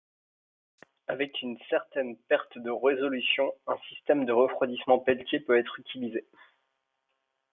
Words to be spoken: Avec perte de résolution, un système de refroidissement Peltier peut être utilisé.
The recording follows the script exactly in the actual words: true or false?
false